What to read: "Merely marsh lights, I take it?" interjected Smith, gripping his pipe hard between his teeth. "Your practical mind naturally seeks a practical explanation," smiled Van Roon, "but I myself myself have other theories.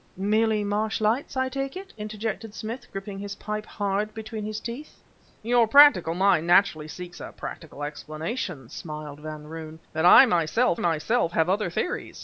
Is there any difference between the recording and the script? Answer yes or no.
no